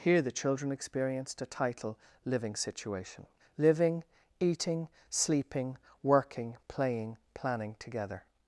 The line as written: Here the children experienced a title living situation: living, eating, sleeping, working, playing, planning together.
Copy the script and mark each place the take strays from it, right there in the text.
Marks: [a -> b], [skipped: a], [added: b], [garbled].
Here the children experienced a title living situation: living, eating, sleeping, working, playing, planning together.